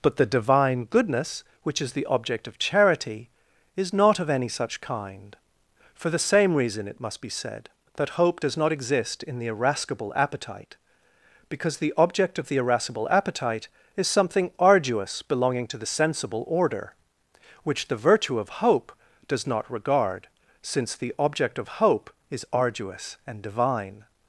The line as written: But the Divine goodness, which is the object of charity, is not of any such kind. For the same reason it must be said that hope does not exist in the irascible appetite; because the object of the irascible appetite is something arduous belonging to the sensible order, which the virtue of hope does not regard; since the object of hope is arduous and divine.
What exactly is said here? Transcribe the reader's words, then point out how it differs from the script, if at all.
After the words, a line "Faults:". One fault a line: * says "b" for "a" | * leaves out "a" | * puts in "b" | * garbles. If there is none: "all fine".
But the Divine goodness, which is the object of charity, is not of any such kind. For the same reason it must be said that hope does not exist in the irascible appetite; because the object of the irascible appetite is something arduous belonging to the sensible order, which the virtue of hope does not regard; since the object of hope is arduous and divine.
Faults:
all fine